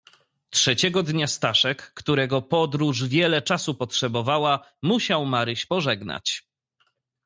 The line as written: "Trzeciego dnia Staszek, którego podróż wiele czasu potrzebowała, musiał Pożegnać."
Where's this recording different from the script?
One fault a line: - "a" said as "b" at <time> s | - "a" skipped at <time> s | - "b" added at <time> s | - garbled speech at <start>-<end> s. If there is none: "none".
- "Maryś" added at 5.2 s